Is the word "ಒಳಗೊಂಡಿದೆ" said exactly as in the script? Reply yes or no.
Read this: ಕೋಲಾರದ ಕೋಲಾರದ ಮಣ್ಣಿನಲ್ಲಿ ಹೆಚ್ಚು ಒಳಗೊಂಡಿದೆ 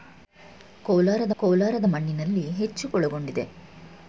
yes